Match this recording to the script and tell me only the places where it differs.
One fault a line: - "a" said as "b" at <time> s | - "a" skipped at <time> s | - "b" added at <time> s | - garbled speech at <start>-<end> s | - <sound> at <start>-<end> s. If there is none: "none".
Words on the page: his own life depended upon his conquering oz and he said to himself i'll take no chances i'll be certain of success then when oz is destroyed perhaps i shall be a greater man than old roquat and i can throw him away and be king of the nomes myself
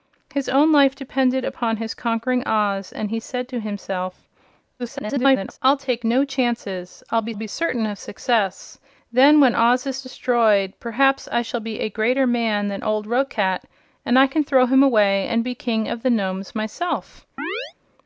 - garbled speech at 4.8-5.6 s
- "be" added at 7.3 s
- chirp at 17.4-17.7 s